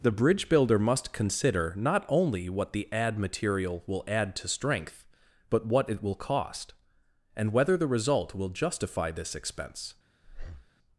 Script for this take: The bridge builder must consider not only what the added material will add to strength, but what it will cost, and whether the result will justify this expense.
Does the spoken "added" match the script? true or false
false